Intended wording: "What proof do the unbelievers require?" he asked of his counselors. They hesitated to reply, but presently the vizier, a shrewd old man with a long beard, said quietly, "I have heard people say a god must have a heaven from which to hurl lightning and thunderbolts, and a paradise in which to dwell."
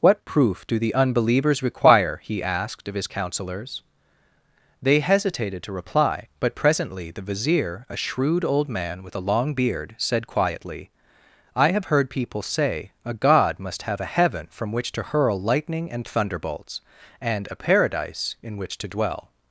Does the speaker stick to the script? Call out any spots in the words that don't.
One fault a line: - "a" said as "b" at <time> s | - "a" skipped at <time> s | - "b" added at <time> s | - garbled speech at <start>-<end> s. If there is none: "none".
none